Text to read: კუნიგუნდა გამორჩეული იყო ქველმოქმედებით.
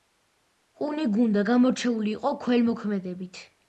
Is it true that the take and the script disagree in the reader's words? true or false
false